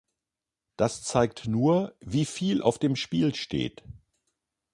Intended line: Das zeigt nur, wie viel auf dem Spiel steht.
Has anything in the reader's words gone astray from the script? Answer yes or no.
no